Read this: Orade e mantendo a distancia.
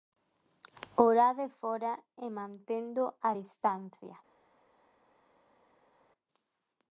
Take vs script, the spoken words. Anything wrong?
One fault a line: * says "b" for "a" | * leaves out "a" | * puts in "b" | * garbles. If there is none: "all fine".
* puts in "fóra"